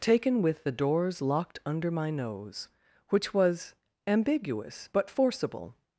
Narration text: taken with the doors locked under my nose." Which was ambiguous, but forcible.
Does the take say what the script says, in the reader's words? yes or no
yes